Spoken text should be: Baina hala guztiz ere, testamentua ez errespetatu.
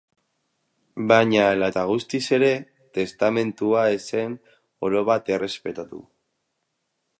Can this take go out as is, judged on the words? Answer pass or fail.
fail